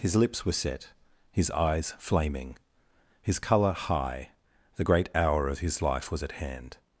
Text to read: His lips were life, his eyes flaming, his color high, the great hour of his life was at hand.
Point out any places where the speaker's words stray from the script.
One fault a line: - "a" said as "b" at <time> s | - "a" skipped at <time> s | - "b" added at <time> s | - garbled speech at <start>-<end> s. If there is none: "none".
- "life" said as "set" at 0.6 s